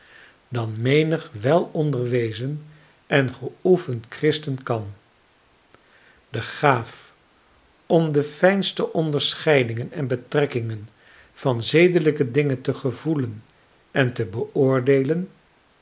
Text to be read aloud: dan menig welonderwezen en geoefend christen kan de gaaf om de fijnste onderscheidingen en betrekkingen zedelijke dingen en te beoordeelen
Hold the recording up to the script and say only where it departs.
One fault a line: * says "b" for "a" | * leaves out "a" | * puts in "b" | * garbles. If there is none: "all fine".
* puts in "van"
* puts in "te gevoelen"